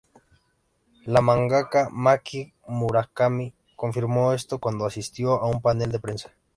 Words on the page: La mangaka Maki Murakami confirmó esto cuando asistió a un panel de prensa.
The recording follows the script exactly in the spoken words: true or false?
true